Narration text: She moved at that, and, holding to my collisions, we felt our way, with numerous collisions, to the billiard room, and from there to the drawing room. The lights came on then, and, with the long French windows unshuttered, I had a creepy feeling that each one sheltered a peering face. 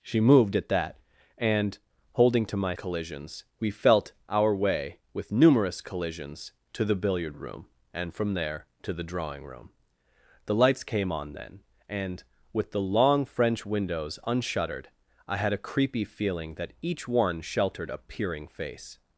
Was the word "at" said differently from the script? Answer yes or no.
no